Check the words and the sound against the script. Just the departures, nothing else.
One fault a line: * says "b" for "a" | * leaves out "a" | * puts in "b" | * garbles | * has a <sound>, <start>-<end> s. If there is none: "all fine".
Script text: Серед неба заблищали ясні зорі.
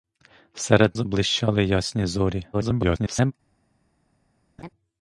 * leaves out "неба"
* garbles
* has a laugh, 4.6-4.7 s